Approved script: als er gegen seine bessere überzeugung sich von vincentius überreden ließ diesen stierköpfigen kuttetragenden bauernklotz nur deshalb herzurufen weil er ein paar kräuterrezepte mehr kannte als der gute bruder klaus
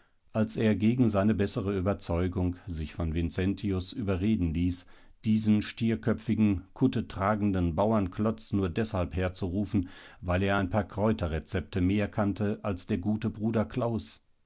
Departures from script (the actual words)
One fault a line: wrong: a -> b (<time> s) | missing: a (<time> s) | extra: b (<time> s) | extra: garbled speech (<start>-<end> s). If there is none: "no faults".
no faults